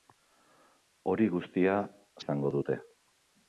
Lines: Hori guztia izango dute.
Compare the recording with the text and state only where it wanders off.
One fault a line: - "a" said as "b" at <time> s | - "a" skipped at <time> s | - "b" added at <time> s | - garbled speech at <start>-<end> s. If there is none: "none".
none